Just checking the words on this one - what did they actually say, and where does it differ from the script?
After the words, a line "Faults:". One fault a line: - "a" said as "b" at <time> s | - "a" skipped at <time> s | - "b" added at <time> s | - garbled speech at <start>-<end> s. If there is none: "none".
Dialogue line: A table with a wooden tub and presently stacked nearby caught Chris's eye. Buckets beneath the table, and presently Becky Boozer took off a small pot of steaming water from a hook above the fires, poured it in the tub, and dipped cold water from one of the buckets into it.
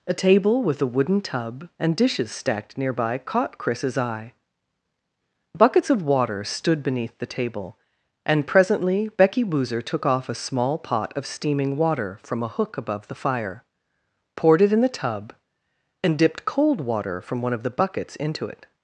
A table with a wooden tub and dishes stacked nearby caught Chris's eye. Buckets of water stood beneath the table, and presently Becky Boozer took off a small pot of steaming water from a hook above the fire, poured it in the tub, and dipped cold water from one of the buckets into it.
Faults:
- "presently" said as "dishes" at 1.9 s
- "of water stood" added at 5.9 s
- "fires" said as "fire" at 13.2 s